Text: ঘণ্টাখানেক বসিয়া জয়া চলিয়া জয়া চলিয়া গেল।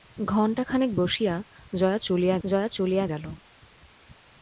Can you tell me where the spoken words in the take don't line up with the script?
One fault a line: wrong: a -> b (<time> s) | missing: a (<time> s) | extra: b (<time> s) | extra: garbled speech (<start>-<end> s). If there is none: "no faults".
no faults